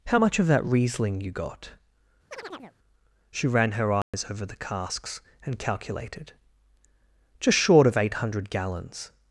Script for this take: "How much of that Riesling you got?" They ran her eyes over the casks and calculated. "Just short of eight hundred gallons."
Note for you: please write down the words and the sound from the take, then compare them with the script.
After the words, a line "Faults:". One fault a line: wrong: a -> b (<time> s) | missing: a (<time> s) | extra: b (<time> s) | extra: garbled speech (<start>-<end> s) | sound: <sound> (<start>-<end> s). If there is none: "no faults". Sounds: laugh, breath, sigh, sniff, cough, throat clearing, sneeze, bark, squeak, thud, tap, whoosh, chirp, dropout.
"How much of that Riesling you got?" She ran her eyes over the casks and calculated. "Just short of eight hundred gallons."
Faults:
sound: chirp (2.3-2.8 s)
wrong: They -> She (3.3 s)
sound: dropout (4.0-4.1 s)